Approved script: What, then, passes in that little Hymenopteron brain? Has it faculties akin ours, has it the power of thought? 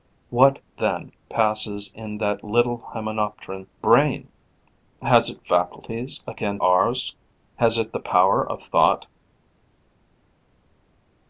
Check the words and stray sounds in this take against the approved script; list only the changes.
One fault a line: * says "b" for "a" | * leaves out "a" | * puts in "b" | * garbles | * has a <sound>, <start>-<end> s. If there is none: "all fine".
all fine